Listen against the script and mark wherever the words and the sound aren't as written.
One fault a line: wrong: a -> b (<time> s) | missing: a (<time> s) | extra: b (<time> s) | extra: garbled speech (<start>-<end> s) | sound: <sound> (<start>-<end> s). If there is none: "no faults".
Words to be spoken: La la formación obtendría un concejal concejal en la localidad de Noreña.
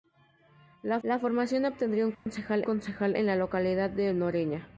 sound: dropout (2.1-2.3 s)